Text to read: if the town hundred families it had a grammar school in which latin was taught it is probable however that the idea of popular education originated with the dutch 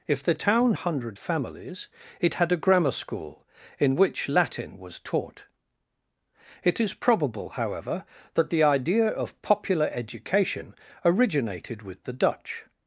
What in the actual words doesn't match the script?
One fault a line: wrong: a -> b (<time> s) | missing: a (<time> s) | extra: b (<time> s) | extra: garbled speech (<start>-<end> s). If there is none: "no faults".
no faults